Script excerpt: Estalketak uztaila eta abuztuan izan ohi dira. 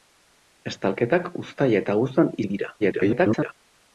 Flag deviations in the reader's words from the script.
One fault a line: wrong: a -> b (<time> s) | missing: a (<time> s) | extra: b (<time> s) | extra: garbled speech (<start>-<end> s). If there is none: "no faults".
missing: izan (2.4 s)
extra: garbled speech (2.8-3.5 s)